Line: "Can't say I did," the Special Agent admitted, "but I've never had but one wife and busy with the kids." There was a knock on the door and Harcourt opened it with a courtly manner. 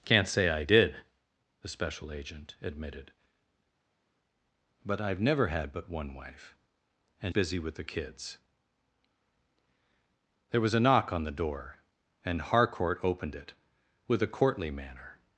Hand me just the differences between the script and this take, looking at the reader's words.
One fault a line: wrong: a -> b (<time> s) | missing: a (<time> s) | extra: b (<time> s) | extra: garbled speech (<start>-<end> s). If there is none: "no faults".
no faults